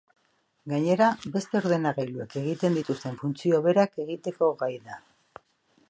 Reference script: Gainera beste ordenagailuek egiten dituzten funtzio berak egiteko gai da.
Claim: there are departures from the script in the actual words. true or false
false